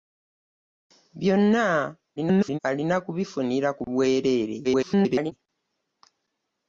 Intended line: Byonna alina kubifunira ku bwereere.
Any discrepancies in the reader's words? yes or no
yes